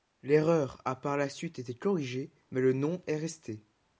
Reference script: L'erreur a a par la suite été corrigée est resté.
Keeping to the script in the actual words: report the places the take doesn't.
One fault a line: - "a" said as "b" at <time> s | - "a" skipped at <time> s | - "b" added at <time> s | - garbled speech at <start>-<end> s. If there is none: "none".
- "a" skipped at 0.9 s
- "mais le nom" added at 2.5 s